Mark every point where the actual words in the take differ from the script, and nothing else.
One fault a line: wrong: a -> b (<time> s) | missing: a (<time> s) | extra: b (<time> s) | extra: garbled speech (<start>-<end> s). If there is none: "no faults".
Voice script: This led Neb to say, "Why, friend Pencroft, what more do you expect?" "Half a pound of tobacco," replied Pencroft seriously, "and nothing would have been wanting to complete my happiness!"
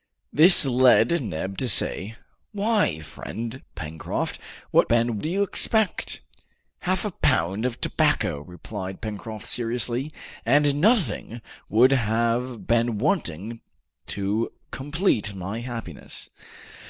wrong: more -> been (4.9 s)